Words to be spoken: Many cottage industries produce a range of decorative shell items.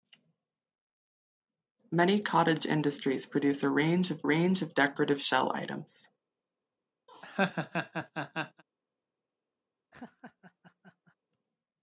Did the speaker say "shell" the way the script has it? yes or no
yes